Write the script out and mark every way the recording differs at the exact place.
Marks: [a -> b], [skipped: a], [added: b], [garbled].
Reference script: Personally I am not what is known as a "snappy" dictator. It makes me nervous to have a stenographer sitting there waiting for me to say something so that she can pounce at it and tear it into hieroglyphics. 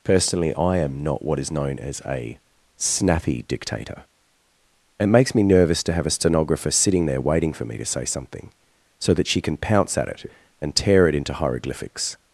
Personally I am not what is known as a "snappy" dictator. It makes me nervous to have a stenographer sitting there waiting for me to say something so that she can pounce at it and tear it into hieroglyphics.